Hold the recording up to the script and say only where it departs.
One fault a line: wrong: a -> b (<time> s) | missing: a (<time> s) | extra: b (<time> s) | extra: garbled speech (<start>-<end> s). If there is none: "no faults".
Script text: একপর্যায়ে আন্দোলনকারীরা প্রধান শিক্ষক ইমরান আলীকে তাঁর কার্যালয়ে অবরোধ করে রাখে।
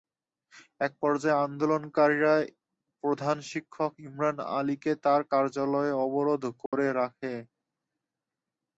no faults